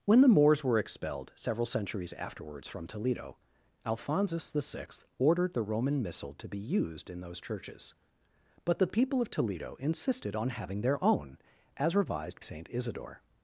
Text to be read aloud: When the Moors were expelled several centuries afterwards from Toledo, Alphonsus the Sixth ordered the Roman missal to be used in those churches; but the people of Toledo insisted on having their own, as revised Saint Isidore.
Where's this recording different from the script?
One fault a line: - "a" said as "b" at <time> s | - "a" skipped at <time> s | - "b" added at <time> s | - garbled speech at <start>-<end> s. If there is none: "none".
none